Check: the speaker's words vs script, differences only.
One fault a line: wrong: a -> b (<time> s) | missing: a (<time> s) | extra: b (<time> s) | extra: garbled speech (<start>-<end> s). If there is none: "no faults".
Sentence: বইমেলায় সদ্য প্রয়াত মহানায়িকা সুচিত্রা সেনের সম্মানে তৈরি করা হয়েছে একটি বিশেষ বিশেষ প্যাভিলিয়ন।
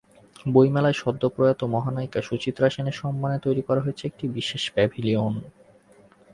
missing: বিশেষ (4.6 s)